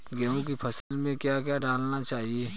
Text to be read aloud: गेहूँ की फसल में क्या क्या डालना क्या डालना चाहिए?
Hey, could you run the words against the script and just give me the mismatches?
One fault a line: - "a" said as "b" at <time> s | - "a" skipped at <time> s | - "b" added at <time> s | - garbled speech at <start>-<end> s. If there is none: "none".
- "क्या डालना" skipped at 2.0 s